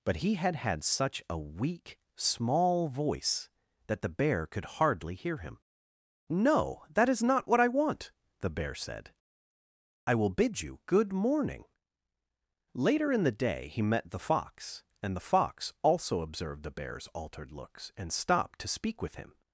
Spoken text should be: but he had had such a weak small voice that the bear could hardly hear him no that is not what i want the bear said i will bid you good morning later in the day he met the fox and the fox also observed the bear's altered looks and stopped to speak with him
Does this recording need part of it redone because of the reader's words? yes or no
no